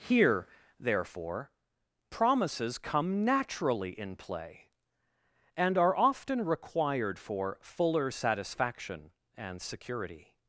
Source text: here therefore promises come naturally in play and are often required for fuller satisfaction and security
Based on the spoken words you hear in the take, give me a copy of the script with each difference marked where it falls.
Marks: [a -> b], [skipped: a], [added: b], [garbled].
here therefore promises come naturally in play and are often required for fuller satisfaction and security